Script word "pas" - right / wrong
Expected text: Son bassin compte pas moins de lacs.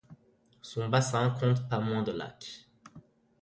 right